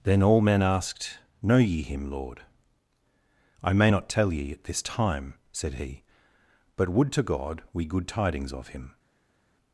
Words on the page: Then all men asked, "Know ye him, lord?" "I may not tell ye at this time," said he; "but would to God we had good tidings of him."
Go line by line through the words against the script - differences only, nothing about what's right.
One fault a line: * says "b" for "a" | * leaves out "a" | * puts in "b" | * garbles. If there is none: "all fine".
* leaves out "had"